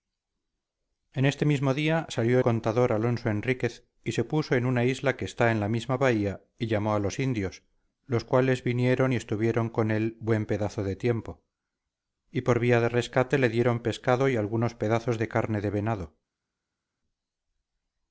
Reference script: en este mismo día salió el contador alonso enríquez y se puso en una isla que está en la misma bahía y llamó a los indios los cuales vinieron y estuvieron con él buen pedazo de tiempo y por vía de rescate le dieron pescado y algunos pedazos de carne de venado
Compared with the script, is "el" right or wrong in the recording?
wrong